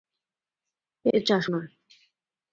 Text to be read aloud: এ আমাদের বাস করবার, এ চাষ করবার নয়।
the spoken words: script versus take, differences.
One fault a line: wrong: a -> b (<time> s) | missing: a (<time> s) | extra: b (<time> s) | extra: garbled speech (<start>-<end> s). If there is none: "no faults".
missing: আমাদের বাস করবার (1.1 s)
missing: করবার (1.4 s)